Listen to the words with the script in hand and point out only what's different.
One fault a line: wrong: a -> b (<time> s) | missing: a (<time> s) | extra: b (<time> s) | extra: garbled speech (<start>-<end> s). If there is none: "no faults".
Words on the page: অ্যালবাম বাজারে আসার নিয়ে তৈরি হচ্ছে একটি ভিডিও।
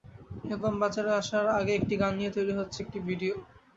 extra: আগে একটি গান (1.6 s)